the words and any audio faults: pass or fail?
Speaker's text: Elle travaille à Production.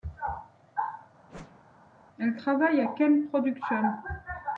fail